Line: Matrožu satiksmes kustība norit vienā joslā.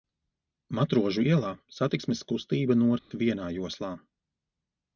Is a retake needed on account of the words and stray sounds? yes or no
yes